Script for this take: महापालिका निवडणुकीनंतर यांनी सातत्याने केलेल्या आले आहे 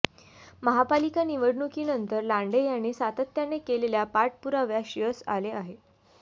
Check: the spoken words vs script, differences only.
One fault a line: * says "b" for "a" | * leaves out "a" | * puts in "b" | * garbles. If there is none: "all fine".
* puts in "लांडे"
* puts in "पाठपुराव्यास यश"